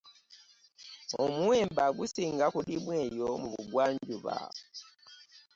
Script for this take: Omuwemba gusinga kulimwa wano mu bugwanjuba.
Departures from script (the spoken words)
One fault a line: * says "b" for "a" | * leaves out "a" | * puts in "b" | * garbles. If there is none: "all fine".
* says "eyo" for "wano"